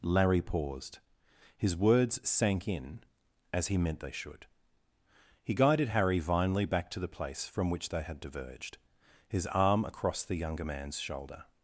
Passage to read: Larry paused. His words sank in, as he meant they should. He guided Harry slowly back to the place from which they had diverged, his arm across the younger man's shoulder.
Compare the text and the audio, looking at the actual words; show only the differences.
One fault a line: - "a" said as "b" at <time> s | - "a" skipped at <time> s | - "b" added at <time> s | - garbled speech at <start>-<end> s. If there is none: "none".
- "slowly" said as "vinely" at 6.2 s